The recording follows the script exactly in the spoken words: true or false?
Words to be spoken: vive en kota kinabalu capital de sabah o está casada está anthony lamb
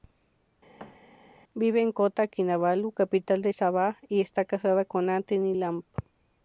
false